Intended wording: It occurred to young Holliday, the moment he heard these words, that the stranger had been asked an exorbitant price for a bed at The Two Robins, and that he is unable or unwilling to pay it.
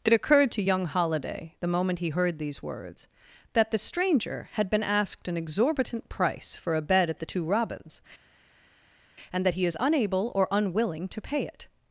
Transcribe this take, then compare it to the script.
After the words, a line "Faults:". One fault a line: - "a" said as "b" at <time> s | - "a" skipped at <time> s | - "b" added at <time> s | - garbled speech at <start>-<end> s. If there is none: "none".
It occurred to young Holliday, the moment he heard these words, that the stranger had been asked an exorbitant price for a bed at The Two Robins, and that he is unable or unwilling to pay it.
Faults:
none